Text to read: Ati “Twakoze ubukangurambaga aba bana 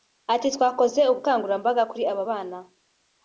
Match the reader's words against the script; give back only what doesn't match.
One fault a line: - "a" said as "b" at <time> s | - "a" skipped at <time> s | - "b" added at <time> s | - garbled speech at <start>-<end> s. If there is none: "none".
- "kuri" added at 1.9 s